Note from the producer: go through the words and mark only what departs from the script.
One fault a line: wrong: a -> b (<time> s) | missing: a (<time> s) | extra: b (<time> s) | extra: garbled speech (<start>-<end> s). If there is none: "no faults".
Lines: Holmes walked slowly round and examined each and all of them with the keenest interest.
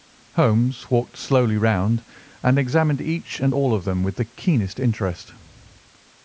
no faults